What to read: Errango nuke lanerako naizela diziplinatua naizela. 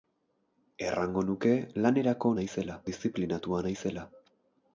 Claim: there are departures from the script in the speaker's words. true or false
false